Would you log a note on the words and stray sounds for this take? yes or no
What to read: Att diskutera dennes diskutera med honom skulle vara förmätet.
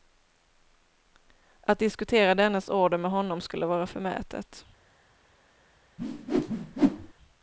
yes